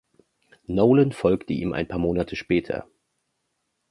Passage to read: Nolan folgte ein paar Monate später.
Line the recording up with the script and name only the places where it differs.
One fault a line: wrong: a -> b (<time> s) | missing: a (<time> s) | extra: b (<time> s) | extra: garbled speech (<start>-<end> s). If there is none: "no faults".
extra: ihm (1.5 s)